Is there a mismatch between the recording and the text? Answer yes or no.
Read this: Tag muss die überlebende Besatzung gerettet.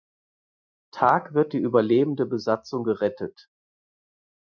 yes